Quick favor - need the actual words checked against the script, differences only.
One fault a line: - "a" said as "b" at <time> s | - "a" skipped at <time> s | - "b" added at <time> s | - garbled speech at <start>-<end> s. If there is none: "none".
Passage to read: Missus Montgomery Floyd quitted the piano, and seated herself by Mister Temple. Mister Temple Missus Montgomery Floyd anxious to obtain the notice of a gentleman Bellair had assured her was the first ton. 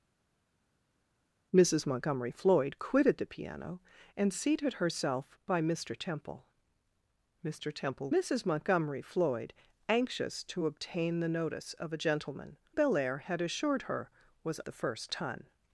none